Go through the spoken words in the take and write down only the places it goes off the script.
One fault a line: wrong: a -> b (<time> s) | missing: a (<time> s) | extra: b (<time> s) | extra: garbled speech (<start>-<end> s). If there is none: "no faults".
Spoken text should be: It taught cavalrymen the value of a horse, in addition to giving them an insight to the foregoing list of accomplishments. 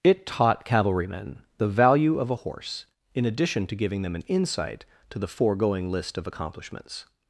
no faults